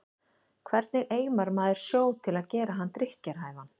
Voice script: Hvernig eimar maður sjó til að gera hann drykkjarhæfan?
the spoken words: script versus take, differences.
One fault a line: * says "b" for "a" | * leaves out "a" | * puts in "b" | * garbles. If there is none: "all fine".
all fine